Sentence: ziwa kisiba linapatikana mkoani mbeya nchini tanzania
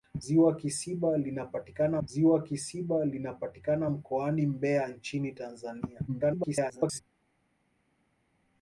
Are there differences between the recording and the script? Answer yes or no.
yes